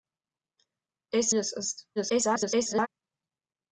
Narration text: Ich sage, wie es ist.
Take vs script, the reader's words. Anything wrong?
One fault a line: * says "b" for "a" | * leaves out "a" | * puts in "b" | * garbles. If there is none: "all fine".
* leaves out "sage wie"
* garbles